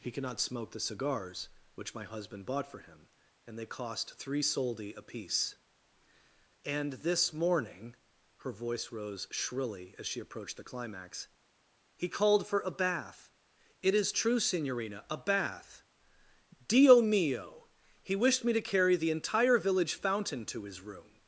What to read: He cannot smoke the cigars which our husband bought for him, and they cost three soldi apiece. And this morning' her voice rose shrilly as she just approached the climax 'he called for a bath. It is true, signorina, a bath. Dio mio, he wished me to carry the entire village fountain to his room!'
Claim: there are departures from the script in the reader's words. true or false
true